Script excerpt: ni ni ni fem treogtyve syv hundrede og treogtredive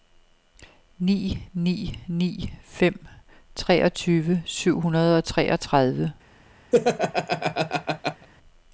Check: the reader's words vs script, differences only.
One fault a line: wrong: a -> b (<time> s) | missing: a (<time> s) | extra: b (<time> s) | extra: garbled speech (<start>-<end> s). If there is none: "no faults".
no faults